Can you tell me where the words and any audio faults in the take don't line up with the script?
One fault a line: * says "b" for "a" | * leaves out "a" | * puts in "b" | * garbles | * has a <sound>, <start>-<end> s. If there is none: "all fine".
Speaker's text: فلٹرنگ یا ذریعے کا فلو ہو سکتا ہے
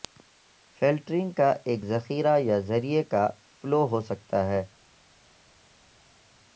* puts in "کا ایک ذخیرہ"